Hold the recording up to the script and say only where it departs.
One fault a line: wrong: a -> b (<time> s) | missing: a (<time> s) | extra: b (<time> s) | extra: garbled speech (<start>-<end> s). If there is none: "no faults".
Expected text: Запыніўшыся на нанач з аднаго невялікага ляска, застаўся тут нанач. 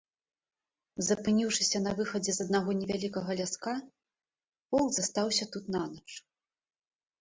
wrong: нанач -> выхадзе (2.0 s)
extra: полк (4.8 s)